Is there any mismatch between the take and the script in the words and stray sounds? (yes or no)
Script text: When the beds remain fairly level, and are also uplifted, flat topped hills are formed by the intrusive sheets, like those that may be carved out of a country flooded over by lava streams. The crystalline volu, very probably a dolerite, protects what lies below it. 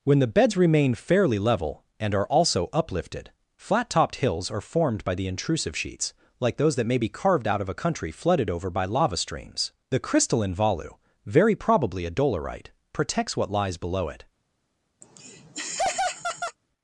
yes